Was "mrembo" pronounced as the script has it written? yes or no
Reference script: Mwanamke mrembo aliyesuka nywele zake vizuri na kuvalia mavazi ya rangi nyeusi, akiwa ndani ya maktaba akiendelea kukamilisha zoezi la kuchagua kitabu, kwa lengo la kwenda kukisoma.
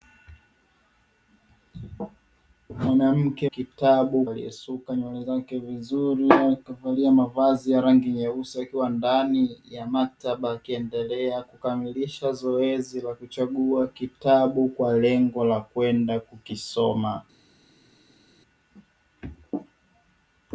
no